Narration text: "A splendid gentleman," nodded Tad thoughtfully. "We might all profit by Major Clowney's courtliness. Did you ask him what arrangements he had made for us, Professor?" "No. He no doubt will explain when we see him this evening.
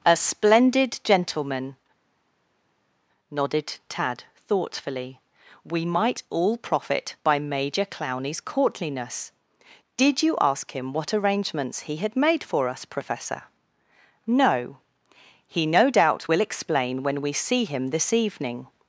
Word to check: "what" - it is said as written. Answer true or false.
true